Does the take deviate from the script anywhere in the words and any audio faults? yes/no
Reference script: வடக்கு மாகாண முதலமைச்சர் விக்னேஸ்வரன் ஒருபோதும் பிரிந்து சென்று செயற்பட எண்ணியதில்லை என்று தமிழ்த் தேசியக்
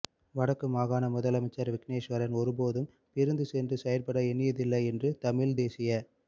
no